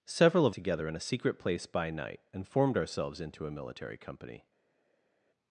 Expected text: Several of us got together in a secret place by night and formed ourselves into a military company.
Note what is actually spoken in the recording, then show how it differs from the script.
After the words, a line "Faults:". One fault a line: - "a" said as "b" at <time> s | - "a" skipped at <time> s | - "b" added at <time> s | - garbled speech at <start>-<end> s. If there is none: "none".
Several of together in a secret place by night and formed ourselves into a military company.
Faults:
- "us got" skipped at 0.6 s